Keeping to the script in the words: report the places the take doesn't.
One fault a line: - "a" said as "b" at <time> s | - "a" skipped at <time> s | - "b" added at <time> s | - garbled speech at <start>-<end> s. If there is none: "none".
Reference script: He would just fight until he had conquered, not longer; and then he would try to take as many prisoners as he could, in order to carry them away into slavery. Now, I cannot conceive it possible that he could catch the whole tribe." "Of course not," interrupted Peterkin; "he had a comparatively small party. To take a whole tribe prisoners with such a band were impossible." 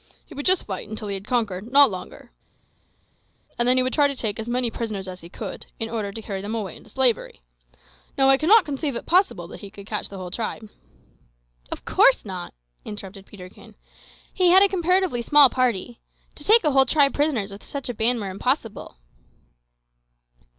none